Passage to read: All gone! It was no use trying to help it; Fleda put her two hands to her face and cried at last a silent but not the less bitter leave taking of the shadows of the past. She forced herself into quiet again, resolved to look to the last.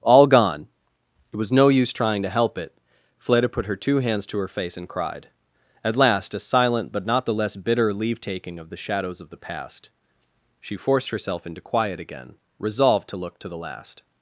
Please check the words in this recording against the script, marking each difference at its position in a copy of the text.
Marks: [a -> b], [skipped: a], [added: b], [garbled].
All gone! It was no use trying to help it; Fleda put her two hands to her face and cried at last a silent but not the less bitter leave taking of the shadows of the past. She forced herself into quiet again, resolved to look to the last.